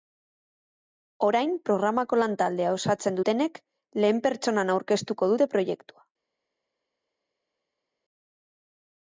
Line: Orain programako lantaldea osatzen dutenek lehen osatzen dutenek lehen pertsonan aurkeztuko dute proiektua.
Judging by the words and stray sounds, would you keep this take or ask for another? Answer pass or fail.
fail